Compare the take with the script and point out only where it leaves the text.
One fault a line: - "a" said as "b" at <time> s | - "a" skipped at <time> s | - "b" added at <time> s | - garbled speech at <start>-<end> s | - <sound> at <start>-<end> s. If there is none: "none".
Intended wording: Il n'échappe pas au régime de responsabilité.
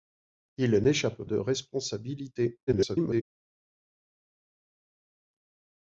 - "pas au régime" skipped at 1.2 s
- garbled speech at 2.7-3.2 s